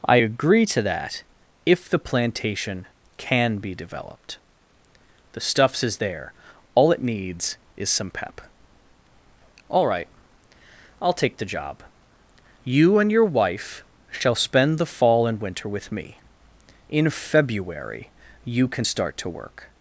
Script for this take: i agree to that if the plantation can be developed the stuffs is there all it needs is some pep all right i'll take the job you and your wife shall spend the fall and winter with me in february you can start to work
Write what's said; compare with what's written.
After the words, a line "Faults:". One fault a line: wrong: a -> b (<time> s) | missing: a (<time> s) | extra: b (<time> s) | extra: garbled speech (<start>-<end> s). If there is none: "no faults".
i agree to that if the plantation can be developed the stuffs is there all it needs is some pep all right i'll take the job you and your wife shall spend the fall and winter with me in february you can start to work
Faults:
no faults